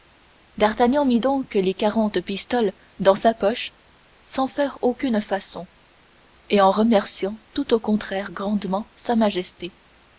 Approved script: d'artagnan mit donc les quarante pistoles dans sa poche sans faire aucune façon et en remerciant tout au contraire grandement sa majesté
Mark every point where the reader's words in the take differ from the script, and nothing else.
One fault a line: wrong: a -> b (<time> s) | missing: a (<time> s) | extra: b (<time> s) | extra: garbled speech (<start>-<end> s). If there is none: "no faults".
no faults